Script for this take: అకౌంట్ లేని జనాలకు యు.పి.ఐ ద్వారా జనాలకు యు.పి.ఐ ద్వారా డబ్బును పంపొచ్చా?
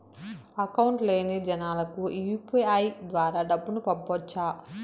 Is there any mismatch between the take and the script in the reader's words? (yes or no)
yes